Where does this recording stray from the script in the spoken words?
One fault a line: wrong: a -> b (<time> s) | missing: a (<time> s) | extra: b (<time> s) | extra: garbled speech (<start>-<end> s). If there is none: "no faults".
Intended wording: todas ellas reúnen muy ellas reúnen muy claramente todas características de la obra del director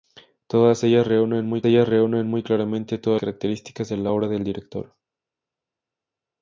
no faults